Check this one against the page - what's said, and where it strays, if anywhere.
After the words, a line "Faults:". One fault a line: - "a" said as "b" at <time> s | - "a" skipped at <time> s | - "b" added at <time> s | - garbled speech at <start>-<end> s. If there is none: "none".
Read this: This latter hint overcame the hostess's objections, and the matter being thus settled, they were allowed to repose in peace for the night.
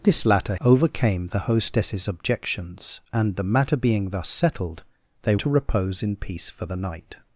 This latter overcame the hostess's objections, and the matter being thus settled, they to repose in peace for the night.
Faults:
- "hint" skipped at 0.6 s
- "were allowed" skipped at 5.3 s